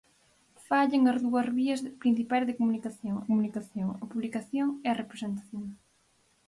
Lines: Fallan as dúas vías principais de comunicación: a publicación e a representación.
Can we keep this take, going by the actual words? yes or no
no